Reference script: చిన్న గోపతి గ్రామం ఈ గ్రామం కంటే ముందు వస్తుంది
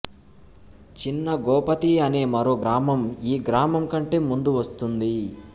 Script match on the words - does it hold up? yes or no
no